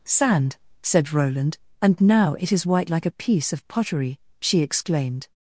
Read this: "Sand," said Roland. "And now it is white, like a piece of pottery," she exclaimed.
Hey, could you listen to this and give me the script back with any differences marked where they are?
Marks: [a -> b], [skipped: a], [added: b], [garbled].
"Sand," said Roland. "And now it is white, like a piece of pottery," she exclaimed.